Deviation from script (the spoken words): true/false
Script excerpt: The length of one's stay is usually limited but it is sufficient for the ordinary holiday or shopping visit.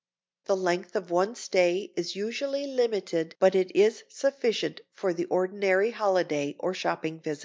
false